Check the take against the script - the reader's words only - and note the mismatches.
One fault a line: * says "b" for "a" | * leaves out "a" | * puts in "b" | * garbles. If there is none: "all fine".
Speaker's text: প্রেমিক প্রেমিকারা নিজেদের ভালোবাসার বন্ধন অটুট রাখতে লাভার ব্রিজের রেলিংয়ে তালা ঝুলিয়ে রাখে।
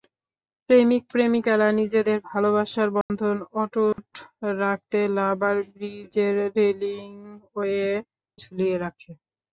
* leaves out "তালা"